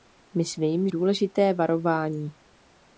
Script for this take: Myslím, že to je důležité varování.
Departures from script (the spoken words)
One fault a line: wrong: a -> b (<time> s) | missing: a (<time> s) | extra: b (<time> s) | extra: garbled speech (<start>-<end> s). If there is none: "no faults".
missing: že to je (0.9 s)